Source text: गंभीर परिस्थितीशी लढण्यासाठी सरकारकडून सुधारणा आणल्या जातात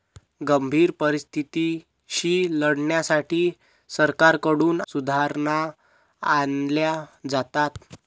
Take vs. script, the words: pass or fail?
pass